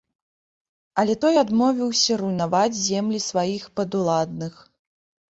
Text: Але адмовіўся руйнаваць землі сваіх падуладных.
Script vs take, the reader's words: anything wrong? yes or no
yes